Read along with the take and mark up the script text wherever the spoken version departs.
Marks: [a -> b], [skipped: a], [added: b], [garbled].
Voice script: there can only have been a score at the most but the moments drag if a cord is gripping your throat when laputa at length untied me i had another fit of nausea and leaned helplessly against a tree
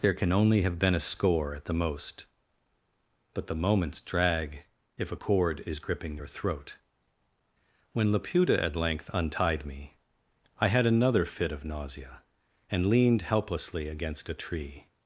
there can only have been a score at the most but the moments drag if a cord is gripping your throat when laputa at length untied me i had another fit of nausea and leaned helplessly against a tree